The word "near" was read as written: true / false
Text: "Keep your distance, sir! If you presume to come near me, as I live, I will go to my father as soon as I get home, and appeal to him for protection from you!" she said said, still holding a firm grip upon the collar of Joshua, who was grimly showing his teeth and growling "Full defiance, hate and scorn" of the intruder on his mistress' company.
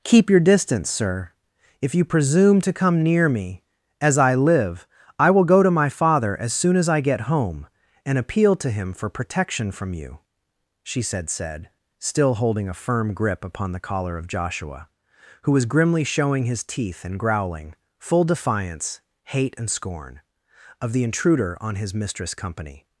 true